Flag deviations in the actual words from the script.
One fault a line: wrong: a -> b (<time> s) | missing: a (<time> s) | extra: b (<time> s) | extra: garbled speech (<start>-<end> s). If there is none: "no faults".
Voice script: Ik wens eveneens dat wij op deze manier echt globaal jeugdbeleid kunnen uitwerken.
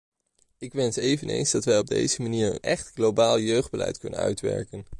no faults